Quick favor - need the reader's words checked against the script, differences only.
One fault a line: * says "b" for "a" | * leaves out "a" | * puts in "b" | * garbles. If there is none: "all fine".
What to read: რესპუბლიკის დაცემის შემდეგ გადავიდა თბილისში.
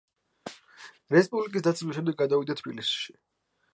all fine